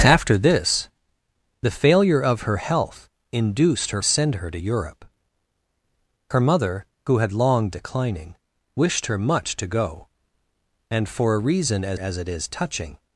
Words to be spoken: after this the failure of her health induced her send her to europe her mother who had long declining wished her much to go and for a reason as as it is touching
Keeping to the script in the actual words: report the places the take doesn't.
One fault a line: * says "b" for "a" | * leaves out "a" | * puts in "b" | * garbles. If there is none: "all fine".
all fine